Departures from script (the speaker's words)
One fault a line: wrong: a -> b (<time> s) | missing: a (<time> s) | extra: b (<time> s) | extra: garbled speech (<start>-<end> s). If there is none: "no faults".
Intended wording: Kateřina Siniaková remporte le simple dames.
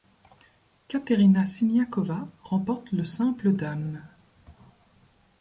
no faults